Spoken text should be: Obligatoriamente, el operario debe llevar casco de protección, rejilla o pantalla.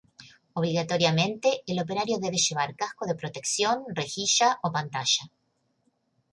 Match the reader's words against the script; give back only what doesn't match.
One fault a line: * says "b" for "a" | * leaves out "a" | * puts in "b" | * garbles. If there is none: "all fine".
all fine